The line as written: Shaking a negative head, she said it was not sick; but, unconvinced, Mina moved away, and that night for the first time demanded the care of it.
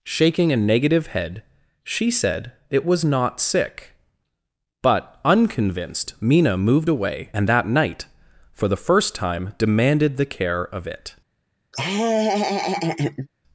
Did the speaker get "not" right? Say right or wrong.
right